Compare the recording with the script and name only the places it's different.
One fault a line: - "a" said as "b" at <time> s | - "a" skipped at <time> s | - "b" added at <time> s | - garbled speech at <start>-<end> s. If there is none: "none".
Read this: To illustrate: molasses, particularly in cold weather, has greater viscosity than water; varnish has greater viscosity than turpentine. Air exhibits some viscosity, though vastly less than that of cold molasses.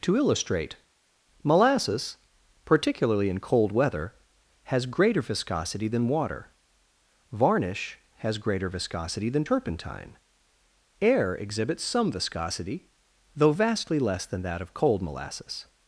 none